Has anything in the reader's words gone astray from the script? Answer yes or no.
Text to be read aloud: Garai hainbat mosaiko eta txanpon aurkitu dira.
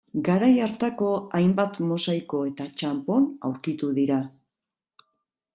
yes